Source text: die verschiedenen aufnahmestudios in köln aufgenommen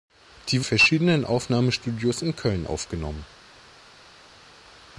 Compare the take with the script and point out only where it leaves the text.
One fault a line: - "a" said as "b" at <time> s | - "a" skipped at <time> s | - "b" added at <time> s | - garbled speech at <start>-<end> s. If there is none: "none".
none